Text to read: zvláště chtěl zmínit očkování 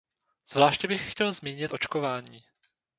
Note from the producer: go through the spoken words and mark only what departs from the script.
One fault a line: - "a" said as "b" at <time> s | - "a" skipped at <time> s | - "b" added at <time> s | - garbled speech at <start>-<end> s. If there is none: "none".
- "bych" added at 0.9 s